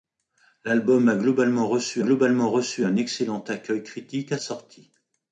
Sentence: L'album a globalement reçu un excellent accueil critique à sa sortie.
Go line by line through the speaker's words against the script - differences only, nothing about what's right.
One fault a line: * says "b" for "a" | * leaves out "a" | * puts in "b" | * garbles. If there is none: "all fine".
* puts in "globalement reçu"
* leaves out "sa"